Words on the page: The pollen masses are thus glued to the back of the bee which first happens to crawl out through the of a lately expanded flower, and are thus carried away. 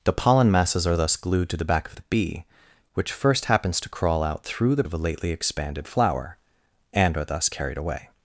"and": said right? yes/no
yes